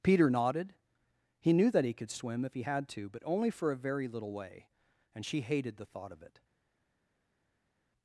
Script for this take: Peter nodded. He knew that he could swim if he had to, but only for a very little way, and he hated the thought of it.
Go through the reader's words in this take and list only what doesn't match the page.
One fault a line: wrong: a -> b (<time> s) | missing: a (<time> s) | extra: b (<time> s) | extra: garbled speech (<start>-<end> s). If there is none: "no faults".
wrong: he -> she (5.2 s)